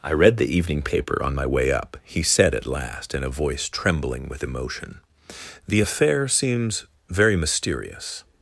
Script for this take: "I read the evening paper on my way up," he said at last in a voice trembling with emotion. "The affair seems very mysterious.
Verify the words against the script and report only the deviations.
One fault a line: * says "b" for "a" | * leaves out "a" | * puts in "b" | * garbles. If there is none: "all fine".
all fine